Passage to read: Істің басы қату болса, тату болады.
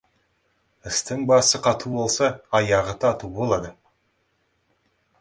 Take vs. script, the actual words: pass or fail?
fail